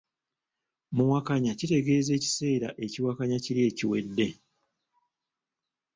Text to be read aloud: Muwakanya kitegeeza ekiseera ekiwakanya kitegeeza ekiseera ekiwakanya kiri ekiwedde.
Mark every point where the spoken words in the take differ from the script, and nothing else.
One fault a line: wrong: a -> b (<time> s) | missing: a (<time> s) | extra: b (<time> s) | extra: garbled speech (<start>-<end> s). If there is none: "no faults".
missing: kitegeeza ekiseera ekiwakanya (3.4 s)